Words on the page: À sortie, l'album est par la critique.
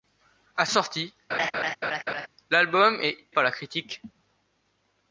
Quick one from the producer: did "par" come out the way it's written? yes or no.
yes